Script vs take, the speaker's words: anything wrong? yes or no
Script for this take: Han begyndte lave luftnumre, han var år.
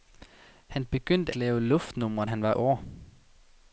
no